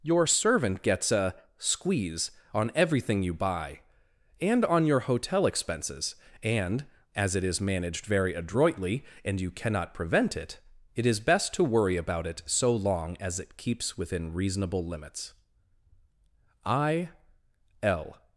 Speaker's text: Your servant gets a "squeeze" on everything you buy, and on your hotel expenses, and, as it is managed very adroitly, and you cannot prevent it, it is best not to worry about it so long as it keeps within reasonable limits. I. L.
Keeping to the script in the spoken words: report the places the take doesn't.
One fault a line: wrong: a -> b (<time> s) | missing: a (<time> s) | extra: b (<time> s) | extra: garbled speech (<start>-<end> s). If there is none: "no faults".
missing: not (11.5 s)